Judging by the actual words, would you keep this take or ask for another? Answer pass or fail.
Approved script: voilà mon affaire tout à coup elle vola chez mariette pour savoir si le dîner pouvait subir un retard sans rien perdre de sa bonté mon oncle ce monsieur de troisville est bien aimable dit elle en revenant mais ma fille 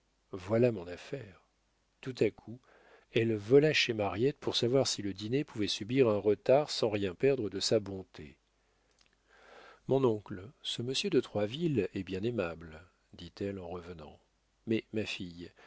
pass